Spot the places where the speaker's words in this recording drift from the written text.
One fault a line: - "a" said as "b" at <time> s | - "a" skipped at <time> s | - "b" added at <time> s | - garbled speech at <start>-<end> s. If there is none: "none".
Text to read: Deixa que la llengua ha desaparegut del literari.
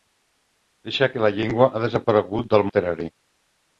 none